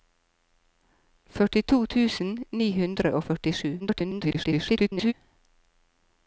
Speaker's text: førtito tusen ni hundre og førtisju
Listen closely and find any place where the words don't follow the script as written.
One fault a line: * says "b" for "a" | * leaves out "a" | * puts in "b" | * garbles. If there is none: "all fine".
* garbles